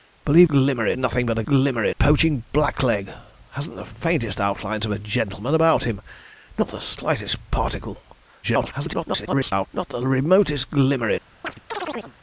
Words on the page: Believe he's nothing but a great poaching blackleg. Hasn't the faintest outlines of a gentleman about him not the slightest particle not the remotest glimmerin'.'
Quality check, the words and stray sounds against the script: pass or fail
fail